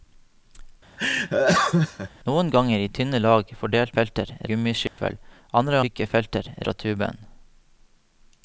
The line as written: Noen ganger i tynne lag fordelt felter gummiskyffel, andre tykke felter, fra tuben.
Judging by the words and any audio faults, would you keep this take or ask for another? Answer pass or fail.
fail